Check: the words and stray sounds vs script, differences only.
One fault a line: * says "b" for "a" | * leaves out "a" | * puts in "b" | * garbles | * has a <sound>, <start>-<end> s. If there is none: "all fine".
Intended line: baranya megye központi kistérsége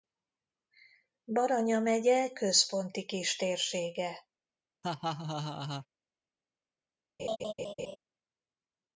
* has a laugh, 4.8-5.9 s
* has a laugh, 7.2-8.0 s